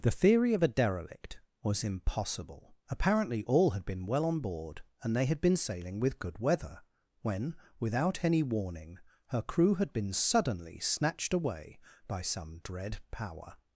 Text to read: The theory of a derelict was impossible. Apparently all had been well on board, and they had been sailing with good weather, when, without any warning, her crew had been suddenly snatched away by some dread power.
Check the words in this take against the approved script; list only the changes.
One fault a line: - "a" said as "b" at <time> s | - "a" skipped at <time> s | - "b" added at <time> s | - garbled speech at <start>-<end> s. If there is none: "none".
none